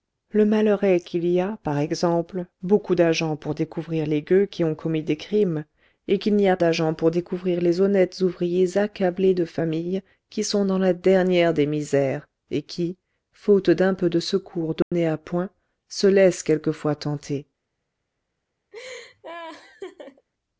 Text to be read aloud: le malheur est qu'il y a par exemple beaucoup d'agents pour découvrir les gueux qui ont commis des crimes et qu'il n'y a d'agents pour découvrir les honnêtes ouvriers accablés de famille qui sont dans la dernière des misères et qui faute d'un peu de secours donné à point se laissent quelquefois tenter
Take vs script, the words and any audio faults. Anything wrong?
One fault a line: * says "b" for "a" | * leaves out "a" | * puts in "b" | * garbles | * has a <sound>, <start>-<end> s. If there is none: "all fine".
* has a dropout, 14.8-14.9 s
* has a laugh, 18.7-20.3 s